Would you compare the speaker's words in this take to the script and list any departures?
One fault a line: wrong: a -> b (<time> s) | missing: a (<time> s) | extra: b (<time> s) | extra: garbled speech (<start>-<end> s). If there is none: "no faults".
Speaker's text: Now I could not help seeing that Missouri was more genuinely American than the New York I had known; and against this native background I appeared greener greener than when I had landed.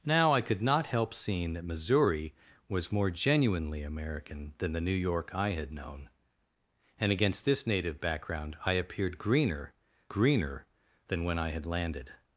no faults